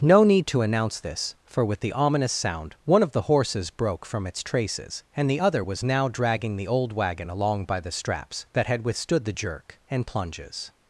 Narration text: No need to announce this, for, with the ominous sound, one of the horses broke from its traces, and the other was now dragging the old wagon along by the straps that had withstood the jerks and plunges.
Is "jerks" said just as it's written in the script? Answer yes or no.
no